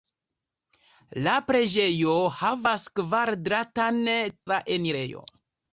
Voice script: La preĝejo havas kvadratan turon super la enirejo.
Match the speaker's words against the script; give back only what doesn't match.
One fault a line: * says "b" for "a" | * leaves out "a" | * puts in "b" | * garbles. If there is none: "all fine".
* leaves out "turon super"